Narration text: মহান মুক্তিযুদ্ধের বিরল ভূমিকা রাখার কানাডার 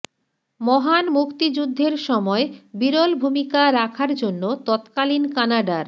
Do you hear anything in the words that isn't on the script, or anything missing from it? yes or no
yes